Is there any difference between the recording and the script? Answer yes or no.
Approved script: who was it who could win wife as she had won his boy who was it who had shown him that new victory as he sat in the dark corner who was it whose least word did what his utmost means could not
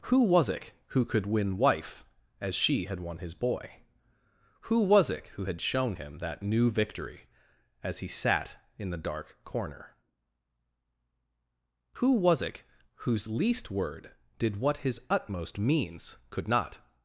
no